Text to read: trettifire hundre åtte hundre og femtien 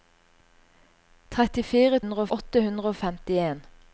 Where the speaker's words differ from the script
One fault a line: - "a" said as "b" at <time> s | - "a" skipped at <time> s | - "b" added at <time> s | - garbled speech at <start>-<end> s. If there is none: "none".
none